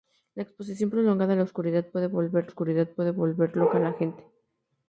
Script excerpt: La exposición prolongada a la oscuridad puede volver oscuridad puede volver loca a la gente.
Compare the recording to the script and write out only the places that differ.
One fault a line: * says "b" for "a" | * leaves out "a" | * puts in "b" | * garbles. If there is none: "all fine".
all fine